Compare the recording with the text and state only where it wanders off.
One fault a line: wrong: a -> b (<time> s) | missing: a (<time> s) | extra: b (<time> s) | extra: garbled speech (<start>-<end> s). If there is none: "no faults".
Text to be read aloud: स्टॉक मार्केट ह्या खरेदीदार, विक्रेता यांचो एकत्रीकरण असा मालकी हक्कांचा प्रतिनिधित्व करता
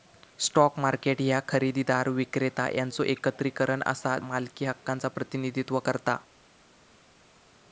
no faults